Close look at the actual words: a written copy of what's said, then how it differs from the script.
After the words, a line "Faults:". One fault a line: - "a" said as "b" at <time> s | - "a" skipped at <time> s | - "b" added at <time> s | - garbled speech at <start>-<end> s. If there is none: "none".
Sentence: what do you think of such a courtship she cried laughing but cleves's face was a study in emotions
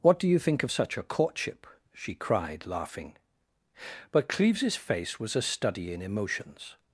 what do you think of such a courtship she cried laughing but cleves's face was a study in emotions
Faults:
none